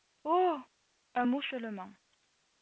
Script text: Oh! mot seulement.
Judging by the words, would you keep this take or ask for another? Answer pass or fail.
fail